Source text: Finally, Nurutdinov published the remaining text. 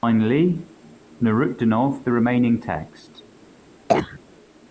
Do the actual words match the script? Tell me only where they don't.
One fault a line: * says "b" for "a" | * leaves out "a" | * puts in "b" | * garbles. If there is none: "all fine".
* leaves out "published"